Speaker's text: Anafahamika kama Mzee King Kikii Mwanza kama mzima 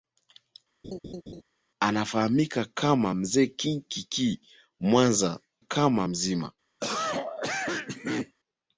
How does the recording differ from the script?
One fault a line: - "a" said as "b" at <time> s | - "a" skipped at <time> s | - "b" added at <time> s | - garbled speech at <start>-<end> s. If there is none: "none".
none